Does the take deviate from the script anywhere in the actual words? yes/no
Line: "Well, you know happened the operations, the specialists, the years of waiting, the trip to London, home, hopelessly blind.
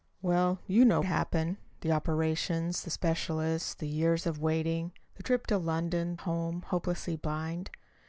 no